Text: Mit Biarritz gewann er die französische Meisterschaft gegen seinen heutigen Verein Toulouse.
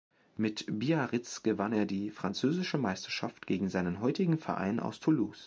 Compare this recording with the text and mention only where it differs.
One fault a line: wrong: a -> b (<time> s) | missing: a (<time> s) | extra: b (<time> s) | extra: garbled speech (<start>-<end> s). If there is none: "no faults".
extra: aus (4.8 s)